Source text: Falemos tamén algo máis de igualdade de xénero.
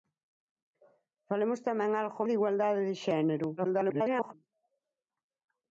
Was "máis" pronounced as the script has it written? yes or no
no